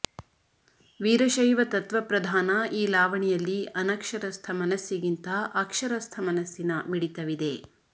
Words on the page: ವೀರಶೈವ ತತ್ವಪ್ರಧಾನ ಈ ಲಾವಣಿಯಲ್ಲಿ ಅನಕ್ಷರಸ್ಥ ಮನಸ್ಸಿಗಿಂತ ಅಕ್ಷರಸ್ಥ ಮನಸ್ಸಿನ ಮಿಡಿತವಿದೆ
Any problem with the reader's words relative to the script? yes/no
no